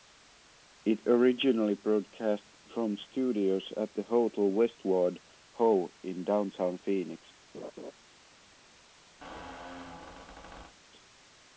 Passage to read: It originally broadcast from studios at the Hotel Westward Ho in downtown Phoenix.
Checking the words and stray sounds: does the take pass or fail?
fail